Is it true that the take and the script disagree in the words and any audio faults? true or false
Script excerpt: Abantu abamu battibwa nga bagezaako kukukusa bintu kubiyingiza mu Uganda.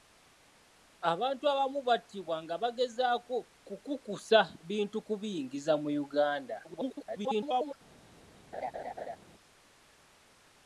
true